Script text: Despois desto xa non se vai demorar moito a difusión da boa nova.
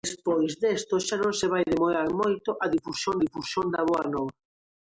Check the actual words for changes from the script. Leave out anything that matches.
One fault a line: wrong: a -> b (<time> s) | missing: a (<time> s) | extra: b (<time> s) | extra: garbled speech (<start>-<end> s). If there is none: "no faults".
extra: difusión (3.2 s)